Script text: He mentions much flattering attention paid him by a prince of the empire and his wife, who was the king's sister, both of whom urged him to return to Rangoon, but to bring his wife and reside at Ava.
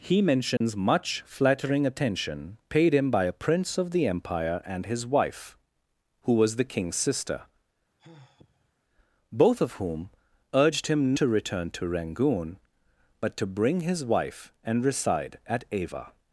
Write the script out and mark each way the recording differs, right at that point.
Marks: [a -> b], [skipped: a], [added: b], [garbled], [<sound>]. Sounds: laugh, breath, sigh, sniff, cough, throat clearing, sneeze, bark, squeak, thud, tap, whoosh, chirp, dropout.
He mentions [dropout] much flattering attention paid him by a prince of the empire and his wife, who was the king's sister, [sigh] both of whom urged him to return to Rangoon, but to bring his wife and reside at Ava.